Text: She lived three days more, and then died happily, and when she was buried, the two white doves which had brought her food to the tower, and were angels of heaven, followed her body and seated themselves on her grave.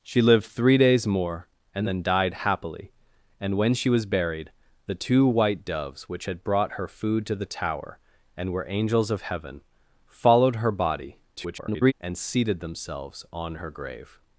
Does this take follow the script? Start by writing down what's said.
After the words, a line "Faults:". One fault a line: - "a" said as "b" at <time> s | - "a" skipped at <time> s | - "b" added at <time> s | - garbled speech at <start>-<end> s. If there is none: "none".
She lived three days more, and then died happily, and when she was buried, the two white doves which had brought her food to the tower, and were angels of heaven, followed her body [garbled] and seated themselves on her grave.
Faults:
- garbled speech at 11.4-11.9 s